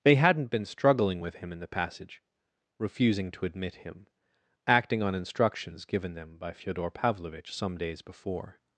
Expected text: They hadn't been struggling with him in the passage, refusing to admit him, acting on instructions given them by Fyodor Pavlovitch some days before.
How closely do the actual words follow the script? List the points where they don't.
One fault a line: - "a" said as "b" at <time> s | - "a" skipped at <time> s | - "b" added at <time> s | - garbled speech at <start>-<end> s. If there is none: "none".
none